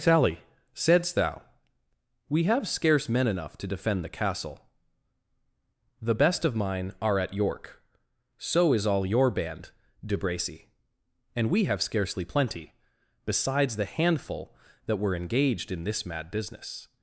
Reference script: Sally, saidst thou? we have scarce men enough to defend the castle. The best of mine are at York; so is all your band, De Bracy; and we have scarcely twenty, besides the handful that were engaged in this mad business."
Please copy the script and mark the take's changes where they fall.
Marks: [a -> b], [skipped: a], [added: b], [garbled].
Sally, saidst thou? we have scarce men enough to defend the castle. The best of mine are at York; so is all your band, De Bracy; and we have scarcely [twenty, -> plenty] besides the handful that were engaged in this mad business."